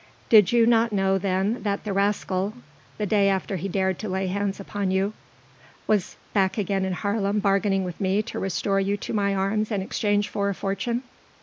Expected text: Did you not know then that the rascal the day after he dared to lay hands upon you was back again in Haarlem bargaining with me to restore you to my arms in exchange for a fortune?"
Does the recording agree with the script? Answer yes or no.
yes